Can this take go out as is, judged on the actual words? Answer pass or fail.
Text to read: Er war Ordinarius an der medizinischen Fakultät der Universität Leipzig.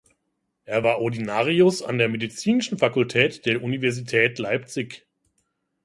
pass